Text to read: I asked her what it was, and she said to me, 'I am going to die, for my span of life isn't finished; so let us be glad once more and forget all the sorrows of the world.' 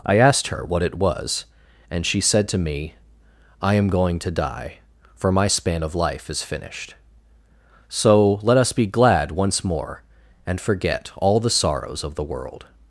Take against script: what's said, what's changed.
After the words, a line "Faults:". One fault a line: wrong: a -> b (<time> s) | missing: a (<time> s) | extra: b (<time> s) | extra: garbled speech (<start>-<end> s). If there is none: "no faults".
I asked her what it was, and she said to me, 'I am going to die, for my span of life is finished; so let us be glad once more and forget all the sorrows of the world.'
Faults:
wrong: isn't -> is (6.3 s)